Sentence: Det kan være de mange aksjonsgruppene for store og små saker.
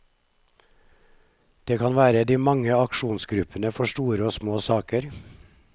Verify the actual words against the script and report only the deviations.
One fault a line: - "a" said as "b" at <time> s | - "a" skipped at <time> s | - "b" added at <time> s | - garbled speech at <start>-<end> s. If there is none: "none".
none